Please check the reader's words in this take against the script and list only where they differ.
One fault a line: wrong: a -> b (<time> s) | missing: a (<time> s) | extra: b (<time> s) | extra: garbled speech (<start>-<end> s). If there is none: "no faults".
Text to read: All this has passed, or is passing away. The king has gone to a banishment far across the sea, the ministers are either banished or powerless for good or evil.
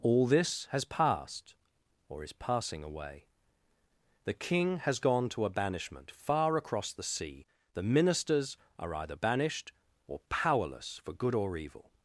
no faults